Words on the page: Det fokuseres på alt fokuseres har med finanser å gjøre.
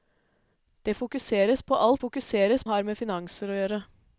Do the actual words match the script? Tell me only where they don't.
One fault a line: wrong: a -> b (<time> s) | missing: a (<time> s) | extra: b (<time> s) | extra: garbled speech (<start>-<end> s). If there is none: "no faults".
no faults